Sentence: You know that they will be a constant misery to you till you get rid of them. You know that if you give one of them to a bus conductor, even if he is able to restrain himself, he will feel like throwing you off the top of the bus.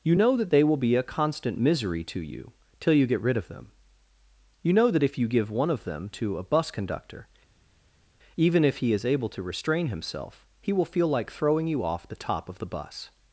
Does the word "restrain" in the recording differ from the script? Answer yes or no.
no